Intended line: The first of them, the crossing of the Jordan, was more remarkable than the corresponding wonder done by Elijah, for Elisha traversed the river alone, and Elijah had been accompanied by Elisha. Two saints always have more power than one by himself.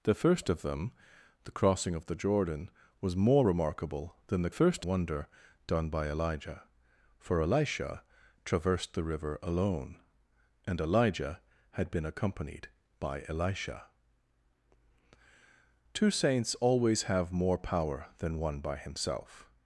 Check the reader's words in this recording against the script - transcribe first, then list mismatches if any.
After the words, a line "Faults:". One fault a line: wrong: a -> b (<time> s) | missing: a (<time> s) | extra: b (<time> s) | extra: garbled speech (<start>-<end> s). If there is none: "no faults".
The first of them, the crossing of the Jordan, was more remarkable than the first wonder done by Elijah, for Elisha traversed the river alone, and Elijah had been accompanied by Elisha. Two saints always have more power than one by himself.
Faults:
wrong: corresponding -> first (4.5 s)